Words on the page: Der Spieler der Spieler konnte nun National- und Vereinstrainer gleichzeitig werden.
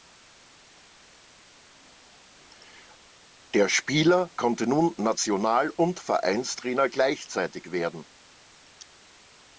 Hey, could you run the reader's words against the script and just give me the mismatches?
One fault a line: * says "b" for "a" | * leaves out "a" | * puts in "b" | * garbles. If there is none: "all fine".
* leaves out "der Spieler"